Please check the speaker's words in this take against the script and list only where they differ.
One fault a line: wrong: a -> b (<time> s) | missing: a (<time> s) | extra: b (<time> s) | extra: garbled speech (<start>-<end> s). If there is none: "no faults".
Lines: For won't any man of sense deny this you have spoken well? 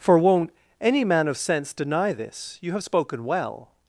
no faults